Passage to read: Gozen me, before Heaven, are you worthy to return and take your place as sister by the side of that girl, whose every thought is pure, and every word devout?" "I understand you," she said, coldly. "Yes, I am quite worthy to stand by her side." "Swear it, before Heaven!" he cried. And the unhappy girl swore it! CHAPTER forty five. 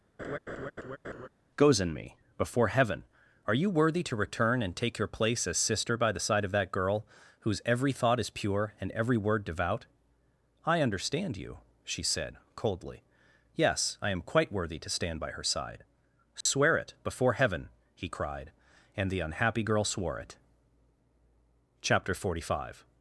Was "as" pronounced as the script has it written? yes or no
yes